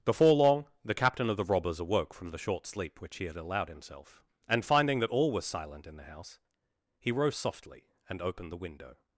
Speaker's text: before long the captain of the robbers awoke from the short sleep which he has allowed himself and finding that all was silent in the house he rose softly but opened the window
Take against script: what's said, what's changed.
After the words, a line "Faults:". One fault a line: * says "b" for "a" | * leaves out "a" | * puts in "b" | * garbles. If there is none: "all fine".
before long the captain of the robbers awoke from the short sleep which he had allowed himself and finding that all was silent in the house he rose softly and opened the window
Faults:
* says "had" for "has"
* says "and" for "but"